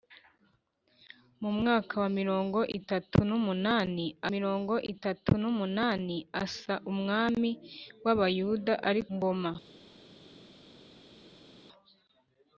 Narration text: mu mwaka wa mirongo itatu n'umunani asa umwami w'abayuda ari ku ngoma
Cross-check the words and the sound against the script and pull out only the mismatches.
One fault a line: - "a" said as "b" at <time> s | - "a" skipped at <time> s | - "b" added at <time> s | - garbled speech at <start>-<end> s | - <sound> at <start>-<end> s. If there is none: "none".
- "mirongo itatu n'umunani" added at 4.3 s
- "ku" skipped at 9.0 s